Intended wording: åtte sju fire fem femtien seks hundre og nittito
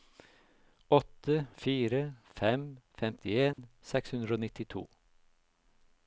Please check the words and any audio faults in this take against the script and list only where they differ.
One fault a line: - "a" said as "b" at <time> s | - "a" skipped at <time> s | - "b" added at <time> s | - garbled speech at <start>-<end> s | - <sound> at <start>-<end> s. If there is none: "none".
- "sju" skipped at 1.4 s
- dropout at 3.5-3.6 s